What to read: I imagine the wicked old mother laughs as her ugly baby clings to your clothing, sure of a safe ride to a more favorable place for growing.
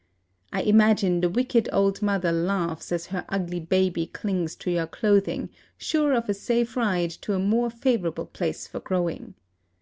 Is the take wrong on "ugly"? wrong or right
right